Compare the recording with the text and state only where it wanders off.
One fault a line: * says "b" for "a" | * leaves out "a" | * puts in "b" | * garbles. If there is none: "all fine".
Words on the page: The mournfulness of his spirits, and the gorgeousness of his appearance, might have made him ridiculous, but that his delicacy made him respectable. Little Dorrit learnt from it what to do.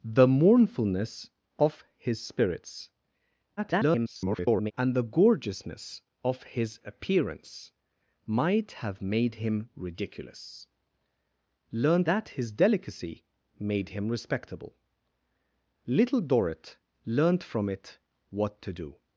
* garbles
* says "learnt" for "but"